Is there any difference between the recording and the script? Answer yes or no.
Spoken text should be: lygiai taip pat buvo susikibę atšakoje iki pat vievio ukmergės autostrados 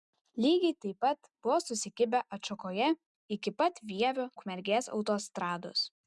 no